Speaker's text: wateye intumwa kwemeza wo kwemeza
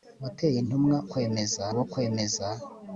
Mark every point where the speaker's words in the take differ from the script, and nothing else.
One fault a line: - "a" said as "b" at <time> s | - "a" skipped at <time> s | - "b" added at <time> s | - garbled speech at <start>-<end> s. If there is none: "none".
none